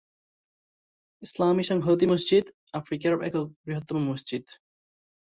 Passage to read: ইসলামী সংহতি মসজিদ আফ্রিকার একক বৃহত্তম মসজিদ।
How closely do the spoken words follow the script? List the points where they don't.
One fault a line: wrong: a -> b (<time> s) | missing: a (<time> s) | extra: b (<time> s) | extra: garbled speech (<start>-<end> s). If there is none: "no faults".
no faults